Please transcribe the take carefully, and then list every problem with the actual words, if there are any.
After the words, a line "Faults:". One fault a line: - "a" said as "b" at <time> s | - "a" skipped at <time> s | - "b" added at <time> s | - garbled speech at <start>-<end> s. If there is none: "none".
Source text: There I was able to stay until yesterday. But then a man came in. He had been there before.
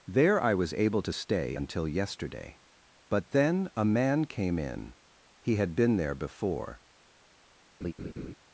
There I was able to stay until yesterday. But then a man came in. He had been there before.
Faults:
none